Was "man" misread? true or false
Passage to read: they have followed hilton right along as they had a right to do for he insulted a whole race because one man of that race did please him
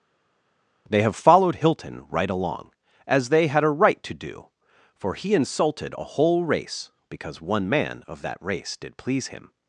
false